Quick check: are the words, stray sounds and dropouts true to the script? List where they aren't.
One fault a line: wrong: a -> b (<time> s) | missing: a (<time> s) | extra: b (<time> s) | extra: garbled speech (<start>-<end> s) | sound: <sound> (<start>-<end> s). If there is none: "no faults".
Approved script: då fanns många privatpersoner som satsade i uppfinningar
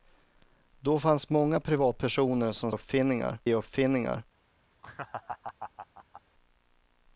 wrong: satsade -> uppfinningar (2.7 s)
sound: laugh (4.8-6.2 s)